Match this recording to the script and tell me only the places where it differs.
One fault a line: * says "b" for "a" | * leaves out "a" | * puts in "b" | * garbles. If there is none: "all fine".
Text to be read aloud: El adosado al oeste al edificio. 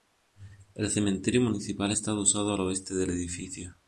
* puts in "cementerio municipal está"
* says "del" for "al"